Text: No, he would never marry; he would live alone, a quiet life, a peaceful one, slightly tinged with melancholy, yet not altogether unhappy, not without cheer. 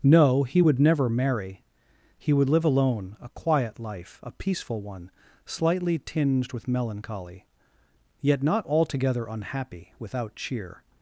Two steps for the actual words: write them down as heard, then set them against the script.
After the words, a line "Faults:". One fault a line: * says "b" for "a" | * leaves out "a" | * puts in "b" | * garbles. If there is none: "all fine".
No, he would never marry; he would live alone, a quiet life, a peaceful one, slightly tinged with melancholy, yet not altogether unhappy, without cheer.
Faults:
* leaves out "not"